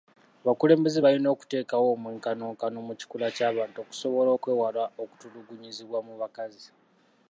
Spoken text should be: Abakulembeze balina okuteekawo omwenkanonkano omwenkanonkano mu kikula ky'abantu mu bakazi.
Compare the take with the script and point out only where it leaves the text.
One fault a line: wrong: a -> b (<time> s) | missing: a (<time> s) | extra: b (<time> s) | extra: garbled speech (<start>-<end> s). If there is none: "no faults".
missing: omwenkanonkano (2.8 s)
extra: okusobola okwewala okutulugunyizibwa (3.8 s)